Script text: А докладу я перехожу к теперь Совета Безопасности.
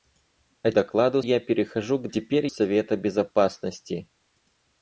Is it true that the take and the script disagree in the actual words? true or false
false